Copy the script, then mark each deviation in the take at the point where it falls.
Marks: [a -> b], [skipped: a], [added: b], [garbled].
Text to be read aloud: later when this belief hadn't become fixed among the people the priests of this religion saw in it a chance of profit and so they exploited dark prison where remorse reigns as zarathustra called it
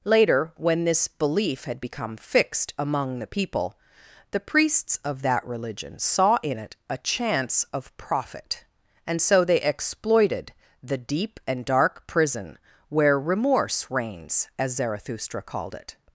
later when this belief [hadn't -> had] become fixed among the people the priests of [this -> that] religion saw in it a chance of profit and so they exploited [added: the deep and] dark prison where remorse reigns as zarathustra called it